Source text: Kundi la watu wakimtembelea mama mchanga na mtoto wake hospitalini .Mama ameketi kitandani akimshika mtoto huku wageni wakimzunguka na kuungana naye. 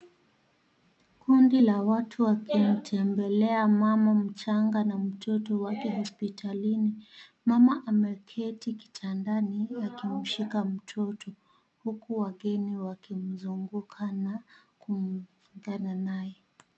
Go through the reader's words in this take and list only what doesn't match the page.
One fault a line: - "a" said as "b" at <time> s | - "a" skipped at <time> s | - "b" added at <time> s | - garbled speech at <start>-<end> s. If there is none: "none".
none